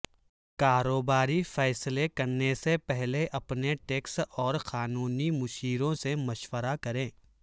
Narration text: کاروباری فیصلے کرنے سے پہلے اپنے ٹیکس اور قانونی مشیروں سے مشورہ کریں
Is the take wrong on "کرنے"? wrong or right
right